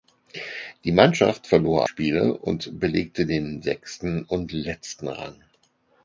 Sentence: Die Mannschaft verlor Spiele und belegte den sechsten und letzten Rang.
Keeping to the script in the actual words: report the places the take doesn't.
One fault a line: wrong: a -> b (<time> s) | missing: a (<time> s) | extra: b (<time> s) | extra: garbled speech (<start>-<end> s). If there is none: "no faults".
no faults